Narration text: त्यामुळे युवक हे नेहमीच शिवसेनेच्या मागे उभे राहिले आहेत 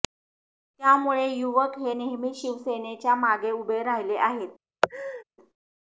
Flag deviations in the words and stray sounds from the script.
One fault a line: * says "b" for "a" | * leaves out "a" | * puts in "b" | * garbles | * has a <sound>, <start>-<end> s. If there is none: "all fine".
* has a laugh, 4.8-5.2 s